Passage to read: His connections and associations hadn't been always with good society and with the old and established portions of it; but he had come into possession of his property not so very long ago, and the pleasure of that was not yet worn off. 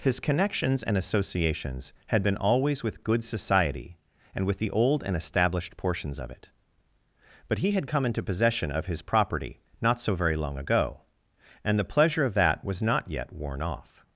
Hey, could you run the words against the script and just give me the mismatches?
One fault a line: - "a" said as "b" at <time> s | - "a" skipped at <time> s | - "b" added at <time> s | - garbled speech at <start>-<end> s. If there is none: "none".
- "hadn't" said as "had" at 2.1 s